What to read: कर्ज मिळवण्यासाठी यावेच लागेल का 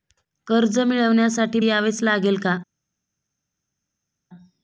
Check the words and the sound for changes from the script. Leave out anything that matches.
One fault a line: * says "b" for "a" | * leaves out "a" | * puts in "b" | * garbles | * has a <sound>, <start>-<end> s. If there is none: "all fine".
all fine